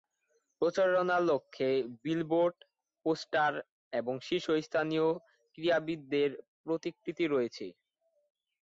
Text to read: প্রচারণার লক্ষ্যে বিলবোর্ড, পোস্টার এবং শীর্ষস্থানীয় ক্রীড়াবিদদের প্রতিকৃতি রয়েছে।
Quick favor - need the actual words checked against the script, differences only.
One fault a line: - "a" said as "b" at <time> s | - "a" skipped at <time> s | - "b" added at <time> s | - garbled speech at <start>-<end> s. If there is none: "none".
none